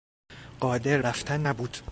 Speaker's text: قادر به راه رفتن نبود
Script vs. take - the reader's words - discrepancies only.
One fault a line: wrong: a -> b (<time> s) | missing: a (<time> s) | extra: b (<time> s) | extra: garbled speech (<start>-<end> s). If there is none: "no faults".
missing: به راه (1.0 s)